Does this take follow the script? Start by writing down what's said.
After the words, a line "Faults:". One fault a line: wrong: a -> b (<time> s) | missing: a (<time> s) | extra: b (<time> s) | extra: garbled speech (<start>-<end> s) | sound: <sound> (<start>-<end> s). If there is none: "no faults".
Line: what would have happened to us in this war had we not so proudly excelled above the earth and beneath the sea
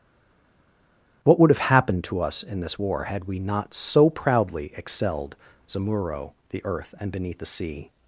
what would have happened to us in this war had we not so proudly excelled zamuro the earth and beneath the sea
Faults:
wrong: above -> zamuro (5.7 s)